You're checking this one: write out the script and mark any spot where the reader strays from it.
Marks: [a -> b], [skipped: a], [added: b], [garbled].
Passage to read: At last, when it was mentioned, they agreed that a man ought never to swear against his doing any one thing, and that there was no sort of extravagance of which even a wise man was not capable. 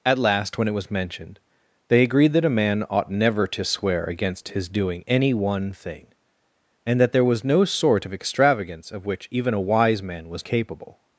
At last, when it was mentioned, they agreed that a man ought never to swear against his doing any one thing, and that there was no sort of extravagance of which even a wise man was [skipped: not] capable.